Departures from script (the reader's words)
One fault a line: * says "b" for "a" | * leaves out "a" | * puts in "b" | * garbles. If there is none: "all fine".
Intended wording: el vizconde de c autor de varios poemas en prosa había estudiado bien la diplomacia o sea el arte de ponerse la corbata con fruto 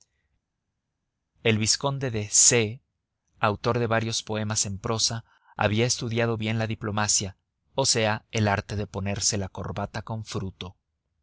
all fine